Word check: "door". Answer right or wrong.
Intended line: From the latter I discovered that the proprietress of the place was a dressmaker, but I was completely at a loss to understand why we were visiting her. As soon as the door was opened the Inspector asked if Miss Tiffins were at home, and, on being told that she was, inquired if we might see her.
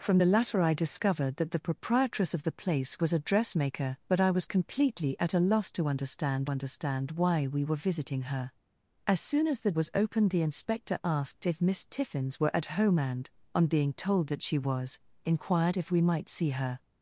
wrong